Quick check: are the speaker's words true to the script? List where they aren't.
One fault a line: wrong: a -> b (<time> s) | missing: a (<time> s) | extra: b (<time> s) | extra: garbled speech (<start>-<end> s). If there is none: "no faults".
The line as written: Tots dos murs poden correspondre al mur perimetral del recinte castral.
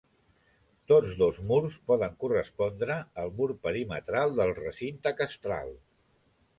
no faults